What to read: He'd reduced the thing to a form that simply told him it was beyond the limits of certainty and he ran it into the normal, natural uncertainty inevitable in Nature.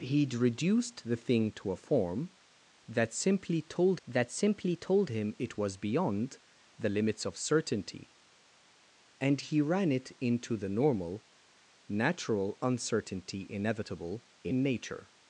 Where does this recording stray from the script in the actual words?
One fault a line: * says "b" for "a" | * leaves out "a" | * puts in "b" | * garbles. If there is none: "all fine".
* puts in "that simply told"